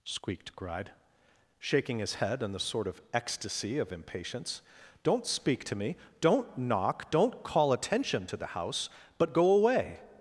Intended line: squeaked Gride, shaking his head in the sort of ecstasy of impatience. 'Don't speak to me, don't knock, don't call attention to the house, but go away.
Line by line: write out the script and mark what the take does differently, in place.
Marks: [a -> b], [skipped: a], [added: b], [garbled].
squeaked Gride, shaking his head in the sort of ecstasy of impatience. 'Don't speak to me, don't knock, don't call attention to the house, but go away.